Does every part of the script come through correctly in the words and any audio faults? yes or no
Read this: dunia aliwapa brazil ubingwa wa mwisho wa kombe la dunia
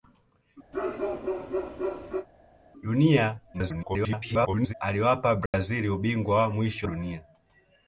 no